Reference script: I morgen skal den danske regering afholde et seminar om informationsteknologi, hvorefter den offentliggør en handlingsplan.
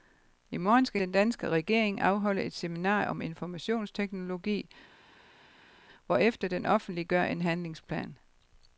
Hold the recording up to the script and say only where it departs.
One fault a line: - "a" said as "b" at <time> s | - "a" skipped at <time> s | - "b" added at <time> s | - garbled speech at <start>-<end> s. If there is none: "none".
none